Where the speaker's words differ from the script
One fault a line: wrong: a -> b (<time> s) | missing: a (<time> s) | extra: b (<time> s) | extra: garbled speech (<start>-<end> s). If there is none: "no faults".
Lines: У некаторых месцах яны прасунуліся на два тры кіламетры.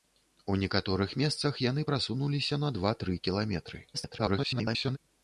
extra: garbled speech (3.9-5.0 s)